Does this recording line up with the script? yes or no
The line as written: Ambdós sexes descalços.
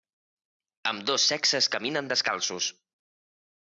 no